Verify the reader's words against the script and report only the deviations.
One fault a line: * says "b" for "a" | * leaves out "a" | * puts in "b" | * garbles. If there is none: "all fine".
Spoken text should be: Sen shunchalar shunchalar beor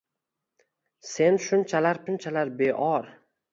all fine